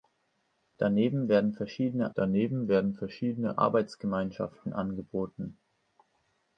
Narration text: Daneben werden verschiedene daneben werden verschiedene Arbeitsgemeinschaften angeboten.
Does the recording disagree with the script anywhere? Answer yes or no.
no